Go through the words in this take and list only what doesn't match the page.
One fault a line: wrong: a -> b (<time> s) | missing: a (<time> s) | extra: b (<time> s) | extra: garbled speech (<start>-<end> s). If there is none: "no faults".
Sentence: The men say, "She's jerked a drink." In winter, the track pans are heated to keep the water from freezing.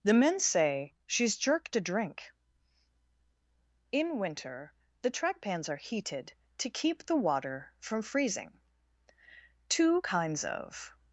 extra: Two kinds of (9.7 s)